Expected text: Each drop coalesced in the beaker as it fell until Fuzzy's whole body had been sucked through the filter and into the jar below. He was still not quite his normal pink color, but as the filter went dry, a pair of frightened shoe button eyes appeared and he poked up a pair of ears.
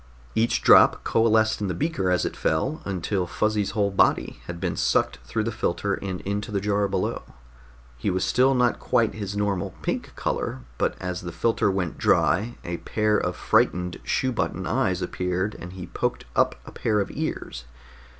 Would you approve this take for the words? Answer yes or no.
yes